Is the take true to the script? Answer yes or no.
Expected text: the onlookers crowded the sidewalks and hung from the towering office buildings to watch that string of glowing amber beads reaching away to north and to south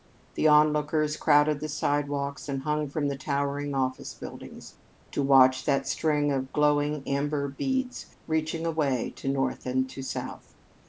yes